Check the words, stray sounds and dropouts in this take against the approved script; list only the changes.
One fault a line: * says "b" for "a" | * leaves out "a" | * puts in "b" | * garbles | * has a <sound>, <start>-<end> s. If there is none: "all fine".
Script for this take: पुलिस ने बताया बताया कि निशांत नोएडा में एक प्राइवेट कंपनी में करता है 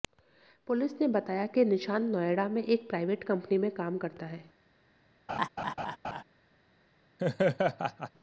* leaves out "बताया"
* puts in "काम"
* has a laugh, 5.3-6.2 s
* has a laugh, 7.2-8.1 s